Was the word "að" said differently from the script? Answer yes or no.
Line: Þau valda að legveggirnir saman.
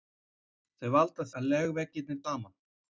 no